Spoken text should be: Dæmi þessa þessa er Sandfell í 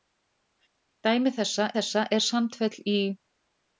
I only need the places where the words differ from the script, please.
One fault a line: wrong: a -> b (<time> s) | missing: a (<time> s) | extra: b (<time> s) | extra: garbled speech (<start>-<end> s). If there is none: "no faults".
no faults